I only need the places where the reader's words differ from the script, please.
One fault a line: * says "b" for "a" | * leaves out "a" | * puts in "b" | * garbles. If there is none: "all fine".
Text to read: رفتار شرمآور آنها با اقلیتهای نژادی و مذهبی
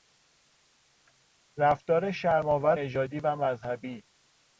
* leaves out "آنها با اقلیتهای"